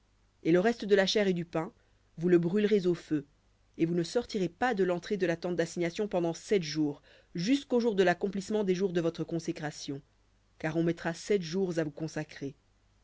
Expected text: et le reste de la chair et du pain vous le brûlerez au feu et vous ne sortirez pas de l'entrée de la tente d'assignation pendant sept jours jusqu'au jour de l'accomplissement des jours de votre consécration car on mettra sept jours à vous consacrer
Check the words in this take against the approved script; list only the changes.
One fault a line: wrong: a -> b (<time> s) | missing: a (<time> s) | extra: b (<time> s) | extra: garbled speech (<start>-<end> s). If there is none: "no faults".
no faults